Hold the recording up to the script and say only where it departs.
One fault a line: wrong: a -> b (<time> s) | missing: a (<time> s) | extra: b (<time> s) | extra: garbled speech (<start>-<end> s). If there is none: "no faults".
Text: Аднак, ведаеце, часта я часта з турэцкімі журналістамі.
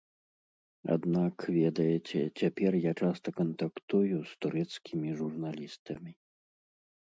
wrong: часта -> цяпер (2.4 s)
extra: кантактую (3.4 s)